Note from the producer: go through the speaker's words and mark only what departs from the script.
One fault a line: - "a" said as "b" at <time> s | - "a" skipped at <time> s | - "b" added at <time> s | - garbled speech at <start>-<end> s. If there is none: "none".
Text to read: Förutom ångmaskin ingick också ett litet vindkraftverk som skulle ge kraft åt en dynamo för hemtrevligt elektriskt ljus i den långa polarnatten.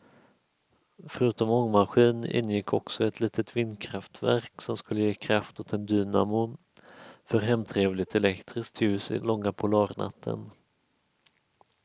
- "den" skipped at 9.2 s